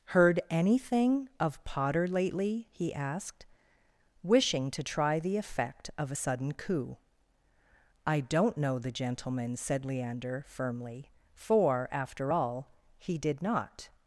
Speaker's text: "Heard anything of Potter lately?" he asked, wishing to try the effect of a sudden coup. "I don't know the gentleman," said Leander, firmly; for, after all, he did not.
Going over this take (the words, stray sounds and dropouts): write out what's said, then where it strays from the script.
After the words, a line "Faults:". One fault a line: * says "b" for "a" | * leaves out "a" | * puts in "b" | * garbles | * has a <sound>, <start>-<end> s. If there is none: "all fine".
"Heard anything of Potter lately?" he asked, wishing to try the effect of a sudden coup. "I don't know the gentleman," said Leander, firmly; for, after all, he did not.
Faults:
all fine